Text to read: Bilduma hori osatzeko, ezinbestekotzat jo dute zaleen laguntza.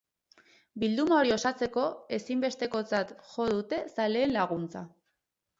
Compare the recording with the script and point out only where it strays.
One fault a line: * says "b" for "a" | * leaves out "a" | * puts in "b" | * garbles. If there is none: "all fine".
all fine